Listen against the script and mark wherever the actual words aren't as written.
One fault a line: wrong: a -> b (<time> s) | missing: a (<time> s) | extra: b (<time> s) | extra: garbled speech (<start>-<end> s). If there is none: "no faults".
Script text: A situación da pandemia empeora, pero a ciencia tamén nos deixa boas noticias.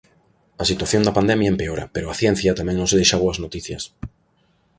no faults